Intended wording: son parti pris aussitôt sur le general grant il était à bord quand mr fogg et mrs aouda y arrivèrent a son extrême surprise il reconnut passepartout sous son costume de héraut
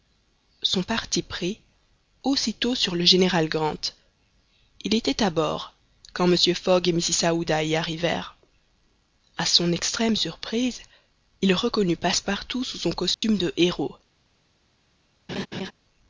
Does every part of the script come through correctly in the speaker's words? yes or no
yes